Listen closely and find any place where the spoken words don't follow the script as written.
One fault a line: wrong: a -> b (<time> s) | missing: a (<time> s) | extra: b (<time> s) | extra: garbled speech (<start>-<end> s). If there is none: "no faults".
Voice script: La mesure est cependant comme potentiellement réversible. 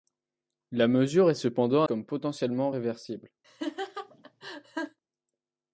no faults